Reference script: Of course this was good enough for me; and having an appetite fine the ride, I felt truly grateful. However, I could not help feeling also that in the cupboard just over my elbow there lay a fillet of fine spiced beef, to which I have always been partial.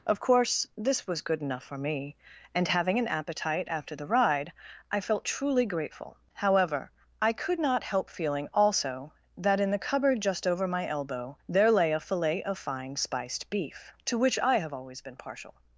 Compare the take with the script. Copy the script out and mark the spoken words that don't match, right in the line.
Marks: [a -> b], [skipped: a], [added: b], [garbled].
Of course this was good enough for me; and having an appetite [fine -> after] the ride, I felt truly grateful. However, I could not help feeling also that in the cupboard just over my elbow there lay a fillet of fine spiced beef, to which I have always been partial.